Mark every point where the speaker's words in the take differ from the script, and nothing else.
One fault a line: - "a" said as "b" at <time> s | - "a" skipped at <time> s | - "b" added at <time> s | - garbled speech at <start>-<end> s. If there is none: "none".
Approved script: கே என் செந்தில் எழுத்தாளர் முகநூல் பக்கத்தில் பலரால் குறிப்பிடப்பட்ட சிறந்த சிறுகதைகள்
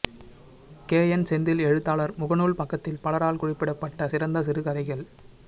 none